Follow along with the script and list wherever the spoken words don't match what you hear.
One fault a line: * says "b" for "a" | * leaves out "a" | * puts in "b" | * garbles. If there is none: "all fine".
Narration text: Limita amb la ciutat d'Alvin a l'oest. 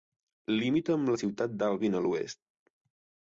all fine